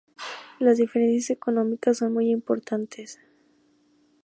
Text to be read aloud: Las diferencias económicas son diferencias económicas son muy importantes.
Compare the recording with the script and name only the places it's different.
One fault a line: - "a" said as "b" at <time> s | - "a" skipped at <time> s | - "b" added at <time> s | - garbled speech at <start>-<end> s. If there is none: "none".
- "diferencias económicas son" skipped at 2.1 s